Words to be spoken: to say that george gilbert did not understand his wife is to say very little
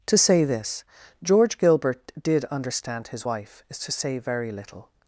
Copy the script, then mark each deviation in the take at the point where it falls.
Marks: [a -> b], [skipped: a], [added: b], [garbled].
to say [that -> this] george gilbert did [skipped: not] understand his wife is to say very little